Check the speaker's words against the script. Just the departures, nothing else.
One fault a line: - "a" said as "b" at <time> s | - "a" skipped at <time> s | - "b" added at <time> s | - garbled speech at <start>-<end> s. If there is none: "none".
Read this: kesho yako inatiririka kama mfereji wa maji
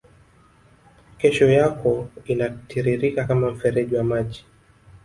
none